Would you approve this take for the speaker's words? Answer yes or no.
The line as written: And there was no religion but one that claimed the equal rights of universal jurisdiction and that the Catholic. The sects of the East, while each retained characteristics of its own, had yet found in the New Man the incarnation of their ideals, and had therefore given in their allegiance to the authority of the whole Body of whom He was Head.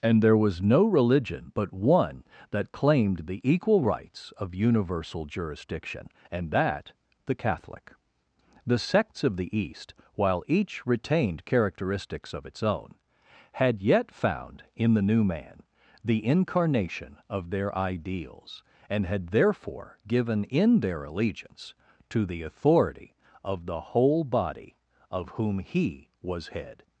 yes